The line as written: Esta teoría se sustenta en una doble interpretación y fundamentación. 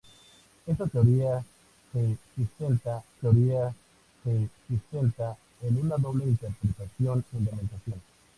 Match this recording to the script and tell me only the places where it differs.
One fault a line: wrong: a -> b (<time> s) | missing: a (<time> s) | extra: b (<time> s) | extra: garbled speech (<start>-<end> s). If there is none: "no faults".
extra: teoría se sustenta (3.2 s)
missing: y (7.2 s)